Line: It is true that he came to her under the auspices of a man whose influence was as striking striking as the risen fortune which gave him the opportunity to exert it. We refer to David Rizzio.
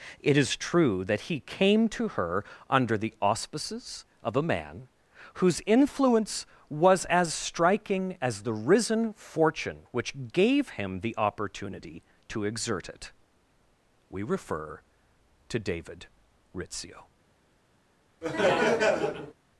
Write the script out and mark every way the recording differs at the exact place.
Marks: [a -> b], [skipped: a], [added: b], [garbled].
It is true that he came to her under the auspices of a man whose influence was as striking [skipped: striking] as the risen fortune which gave him the opportunity to exert it. We refer to David Rizzio.